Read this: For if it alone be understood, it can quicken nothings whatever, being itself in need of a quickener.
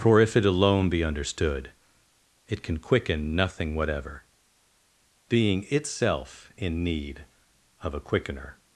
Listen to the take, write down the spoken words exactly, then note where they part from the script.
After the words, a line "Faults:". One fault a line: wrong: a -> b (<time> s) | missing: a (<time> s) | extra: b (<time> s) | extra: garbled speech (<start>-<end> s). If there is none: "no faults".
For if it alone be understood, it can quicken nothing whatever, being itself in need of a quickener.
Faults:
wrong: nothings -> nothing (3.4 s)